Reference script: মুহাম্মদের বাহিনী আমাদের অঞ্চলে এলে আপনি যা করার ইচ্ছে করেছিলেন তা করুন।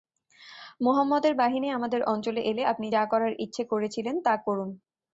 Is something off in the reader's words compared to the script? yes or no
no